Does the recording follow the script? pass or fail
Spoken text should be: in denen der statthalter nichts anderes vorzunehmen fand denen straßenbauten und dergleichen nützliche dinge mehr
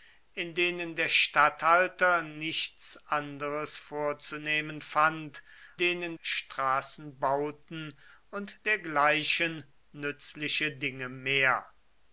pass